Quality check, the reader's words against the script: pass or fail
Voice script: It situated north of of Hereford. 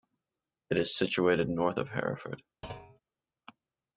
fail